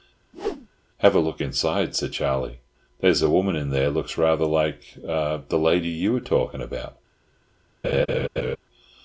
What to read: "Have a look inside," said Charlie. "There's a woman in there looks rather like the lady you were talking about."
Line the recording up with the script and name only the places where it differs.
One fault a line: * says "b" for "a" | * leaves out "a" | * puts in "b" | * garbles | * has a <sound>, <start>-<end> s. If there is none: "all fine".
* has a whoosh, 0.3-0.7 s
* has a laugh, 7.8-8.6 s